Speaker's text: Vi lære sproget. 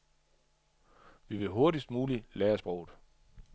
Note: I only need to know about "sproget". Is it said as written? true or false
true